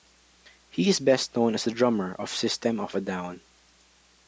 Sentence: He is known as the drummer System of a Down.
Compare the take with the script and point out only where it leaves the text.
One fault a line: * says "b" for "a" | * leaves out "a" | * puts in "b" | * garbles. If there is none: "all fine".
* puts in "best"
* puts in "of"